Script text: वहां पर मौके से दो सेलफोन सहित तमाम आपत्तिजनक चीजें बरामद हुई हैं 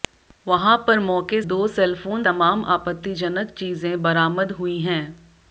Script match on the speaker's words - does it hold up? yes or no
no